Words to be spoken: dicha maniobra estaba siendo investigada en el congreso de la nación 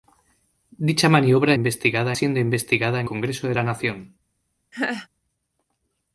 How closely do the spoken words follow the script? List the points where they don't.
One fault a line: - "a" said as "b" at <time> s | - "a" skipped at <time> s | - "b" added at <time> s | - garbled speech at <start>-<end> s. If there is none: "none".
- "estaba" said as "investigada" at 1.5 s
- "el" skipped at 3.1 s